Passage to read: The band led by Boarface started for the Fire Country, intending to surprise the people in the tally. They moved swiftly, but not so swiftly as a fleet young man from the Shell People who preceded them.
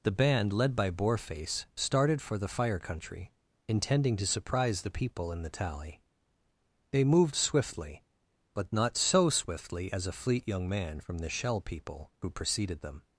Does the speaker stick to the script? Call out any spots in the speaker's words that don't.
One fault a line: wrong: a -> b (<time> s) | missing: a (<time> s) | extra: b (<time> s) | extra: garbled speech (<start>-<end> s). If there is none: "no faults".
no faults